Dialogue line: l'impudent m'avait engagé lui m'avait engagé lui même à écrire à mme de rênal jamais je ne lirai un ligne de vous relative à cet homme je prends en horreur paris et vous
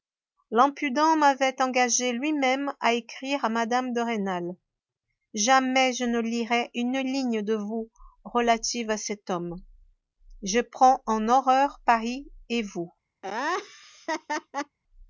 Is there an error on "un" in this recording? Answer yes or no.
yes